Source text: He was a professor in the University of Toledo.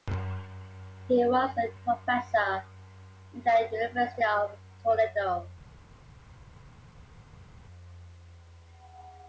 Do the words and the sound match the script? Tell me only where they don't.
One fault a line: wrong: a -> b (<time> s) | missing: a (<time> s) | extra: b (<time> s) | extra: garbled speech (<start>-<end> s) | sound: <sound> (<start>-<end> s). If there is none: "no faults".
no faults